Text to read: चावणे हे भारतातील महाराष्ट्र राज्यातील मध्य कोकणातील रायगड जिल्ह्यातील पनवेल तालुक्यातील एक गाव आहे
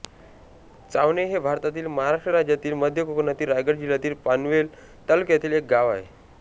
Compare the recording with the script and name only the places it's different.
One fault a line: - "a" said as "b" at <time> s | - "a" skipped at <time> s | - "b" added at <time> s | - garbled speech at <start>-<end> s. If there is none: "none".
none